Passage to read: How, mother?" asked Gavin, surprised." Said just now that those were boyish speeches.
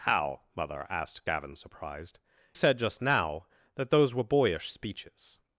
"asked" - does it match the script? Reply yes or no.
yes